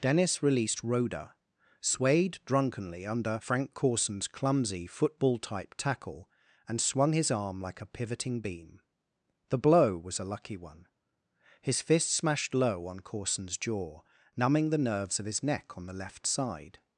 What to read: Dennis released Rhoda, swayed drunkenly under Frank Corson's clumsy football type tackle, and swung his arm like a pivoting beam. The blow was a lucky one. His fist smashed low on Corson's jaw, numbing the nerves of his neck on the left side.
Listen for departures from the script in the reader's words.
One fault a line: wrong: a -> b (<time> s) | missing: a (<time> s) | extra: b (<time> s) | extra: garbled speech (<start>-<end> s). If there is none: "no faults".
no faults